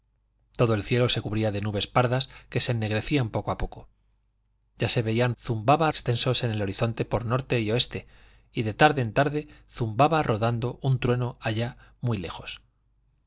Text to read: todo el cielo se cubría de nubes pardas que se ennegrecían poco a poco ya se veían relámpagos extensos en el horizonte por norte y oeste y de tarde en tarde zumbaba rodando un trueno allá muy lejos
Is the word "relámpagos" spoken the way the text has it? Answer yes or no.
no